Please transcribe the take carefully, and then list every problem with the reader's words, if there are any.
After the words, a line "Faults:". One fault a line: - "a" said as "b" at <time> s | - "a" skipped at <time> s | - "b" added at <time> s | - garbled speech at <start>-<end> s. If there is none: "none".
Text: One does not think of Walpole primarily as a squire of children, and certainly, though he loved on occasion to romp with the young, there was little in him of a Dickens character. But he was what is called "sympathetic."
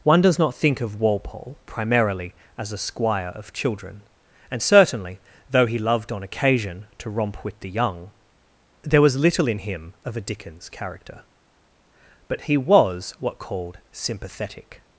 One does not think of Walpole primarily as a squire of children, and certainly, though he loved on occasion to romp with the young, there was little in him of a Dickens character. But he was what called "sympathetic."
Faults:
- "is" skipped at 13.4 s